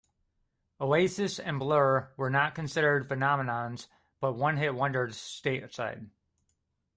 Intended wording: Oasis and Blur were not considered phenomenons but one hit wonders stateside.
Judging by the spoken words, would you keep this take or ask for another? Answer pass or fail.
pass